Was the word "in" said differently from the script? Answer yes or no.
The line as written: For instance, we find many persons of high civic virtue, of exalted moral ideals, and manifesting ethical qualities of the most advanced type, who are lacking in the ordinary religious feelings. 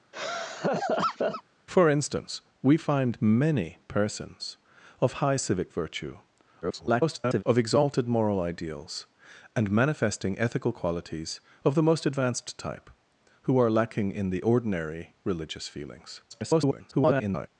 no